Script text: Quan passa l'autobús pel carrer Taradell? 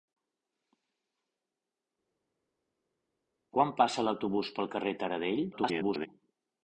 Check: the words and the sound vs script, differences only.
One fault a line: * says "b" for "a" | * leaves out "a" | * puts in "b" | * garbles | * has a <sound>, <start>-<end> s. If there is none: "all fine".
* garbles